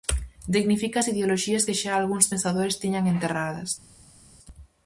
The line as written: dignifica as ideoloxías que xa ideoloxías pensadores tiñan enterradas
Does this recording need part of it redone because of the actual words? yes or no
yes